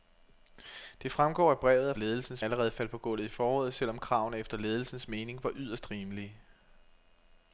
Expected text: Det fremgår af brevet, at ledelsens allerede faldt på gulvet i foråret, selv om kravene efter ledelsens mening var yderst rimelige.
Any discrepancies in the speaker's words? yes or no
no